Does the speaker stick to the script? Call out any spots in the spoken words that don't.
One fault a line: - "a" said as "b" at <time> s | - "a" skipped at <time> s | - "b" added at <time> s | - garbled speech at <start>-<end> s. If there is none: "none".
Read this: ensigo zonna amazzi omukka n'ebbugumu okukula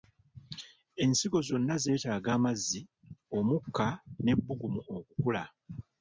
- "zeetaaga" added at 1.8 s